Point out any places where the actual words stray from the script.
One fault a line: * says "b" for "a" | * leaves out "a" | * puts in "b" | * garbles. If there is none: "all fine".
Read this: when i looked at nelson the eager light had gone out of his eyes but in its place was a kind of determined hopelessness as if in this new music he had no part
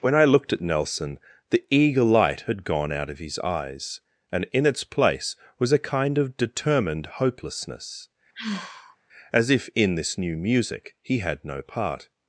* says "and" for "but"